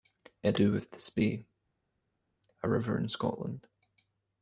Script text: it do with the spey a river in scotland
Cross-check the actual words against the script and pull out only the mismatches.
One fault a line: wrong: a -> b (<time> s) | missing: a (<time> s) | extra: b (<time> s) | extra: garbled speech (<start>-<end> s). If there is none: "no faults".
no faults